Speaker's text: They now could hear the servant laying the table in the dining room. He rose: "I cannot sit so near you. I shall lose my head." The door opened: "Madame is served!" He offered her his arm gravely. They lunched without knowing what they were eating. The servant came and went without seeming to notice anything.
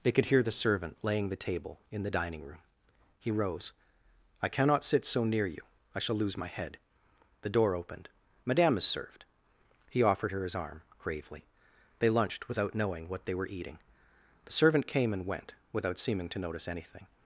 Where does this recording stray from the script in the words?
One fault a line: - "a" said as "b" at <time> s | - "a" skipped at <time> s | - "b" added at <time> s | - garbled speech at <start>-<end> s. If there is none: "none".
- "now" skipped at 0.1 s